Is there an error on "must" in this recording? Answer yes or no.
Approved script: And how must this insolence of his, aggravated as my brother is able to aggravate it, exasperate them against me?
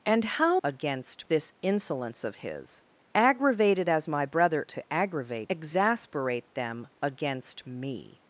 yes